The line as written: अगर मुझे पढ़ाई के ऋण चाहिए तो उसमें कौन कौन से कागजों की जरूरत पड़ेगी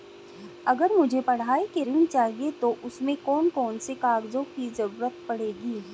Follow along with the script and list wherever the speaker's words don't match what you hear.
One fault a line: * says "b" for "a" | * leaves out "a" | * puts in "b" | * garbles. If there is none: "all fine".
all fine